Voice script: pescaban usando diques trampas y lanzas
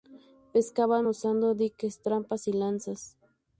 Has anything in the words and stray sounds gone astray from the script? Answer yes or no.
no